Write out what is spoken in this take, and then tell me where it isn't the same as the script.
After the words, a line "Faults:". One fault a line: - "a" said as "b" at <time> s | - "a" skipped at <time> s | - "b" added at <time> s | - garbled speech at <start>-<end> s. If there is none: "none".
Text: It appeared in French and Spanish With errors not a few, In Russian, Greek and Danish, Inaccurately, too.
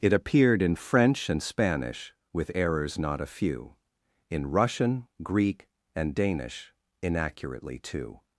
It appeared in French and Spanish With errors not a few, In Russian, Greek and Danish, Inaccurately, too.
Faults:
none